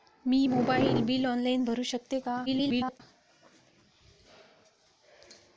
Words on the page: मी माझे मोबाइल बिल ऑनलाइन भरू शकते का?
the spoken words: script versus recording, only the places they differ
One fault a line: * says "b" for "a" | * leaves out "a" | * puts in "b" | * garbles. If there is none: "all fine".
* leaves out "माझे"
* garbles